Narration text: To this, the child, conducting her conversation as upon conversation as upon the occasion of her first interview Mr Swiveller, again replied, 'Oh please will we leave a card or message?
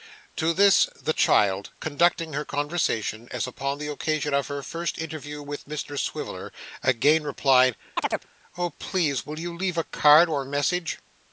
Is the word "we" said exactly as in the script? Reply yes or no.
no